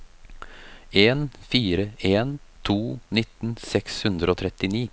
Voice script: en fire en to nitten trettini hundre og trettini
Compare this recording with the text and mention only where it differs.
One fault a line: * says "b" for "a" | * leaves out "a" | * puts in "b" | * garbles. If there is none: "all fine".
* says "seks" for "trettini"